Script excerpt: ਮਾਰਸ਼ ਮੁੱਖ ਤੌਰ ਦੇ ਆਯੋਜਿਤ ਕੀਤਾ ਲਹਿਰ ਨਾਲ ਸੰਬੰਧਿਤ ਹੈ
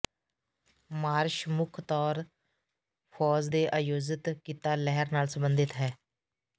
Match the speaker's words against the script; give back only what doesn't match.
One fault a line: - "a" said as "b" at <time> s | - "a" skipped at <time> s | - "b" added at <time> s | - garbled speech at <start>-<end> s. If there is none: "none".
- "ਫ਼ੌਜ" added at 3.1 s